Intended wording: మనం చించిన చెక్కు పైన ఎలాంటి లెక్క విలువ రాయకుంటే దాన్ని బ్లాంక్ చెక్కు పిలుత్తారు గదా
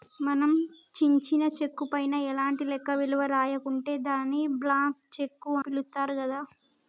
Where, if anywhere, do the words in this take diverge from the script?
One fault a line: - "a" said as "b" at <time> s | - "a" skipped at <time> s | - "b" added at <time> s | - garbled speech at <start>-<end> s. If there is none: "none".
none